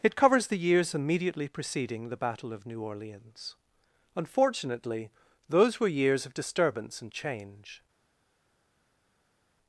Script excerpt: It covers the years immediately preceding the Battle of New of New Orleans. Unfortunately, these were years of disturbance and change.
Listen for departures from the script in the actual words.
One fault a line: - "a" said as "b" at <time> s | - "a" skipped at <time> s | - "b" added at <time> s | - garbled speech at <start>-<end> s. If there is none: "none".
- "of New" skipped at 2.8 s
- "these" said as "those" at 5.5 s